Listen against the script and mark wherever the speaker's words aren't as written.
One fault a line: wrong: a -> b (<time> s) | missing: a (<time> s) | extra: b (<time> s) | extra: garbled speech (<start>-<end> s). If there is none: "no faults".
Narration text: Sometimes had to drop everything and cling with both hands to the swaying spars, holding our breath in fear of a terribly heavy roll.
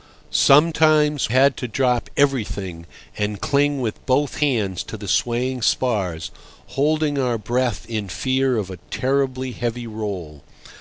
no faults